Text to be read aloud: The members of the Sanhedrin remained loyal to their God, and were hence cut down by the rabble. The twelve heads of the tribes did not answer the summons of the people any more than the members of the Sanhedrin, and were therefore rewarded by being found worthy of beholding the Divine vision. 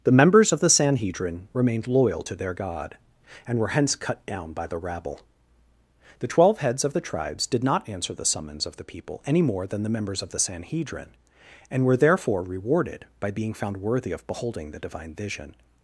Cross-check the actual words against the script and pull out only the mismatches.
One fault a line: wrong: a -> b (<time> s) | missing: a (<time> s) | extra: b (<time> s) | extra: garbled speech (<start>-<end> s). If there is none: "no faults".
no faults